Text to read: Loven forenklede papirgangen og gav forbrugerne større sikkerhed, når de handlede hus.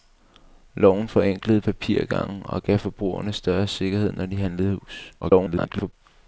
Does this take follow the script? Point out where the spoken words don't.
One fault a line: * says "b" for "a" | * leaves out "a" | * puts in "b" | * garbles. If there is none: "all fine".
* garbles